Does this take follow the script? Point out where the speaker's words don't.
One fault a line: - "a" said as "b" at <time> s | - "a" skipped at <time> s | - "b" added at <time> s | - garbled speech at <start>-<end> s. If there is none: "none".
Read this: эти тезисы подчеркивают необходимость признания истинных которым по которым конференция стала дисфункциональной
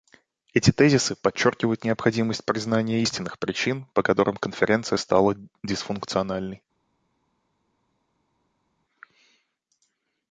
- "которым" said as "причин" at 3.4 s